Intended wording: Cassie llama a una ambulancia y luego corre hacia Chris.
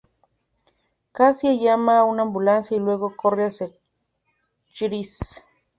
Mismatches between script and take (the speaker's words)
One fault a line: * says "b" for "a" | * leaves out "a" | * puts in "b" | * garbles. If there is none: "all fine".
all fine